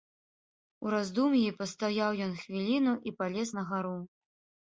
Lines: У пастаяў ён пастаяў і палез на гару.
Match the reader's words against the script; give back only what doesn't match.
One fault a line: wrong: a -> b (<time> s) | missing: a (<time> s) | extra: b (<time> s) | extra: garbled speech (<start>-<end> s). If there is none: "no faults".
extra: раздум'і (0.9 s)
wrong: пастаяў -> хвіліну (2.4 s)